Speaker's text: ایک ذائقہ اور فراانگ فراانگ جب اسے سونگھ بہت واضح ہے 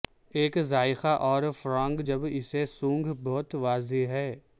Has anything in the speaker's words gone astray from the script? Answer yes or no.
yes